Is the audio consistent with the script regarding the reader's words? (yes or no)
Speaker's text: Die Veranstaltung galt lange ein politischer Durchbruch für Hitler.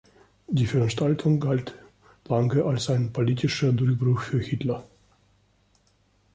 no